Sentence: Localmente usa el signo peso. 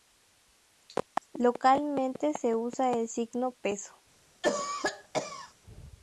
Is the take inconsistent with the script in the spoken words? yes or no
yes